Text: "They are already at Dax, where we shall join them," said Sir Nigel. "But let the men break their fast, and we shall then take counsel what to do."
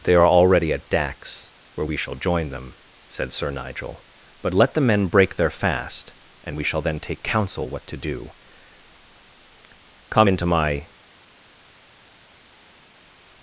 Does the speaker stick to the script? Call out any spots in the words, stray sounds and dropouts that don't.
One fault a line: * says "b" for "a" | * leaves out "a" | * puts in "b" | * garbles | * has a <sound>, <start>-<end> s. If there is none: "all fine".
* puts in "Come into my"